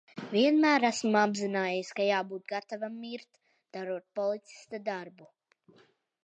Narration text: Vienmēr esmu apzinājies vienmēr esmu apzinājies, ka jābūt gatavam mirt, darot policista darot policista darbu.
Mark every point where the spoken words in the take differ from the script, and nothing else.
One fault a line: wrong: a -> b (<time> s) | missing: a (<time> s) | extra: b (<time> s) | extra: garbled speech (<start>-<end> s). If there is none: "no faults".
missing: vienmēr esmu apzinājies (1.9 s)
missing: darot policista (4.8 s)